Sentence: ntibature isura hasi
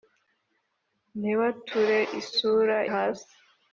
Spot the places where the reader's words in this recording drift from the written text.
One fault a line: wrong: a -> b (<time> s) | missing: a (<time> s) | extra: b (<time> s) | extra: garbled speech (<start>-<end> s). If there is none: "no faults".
no faults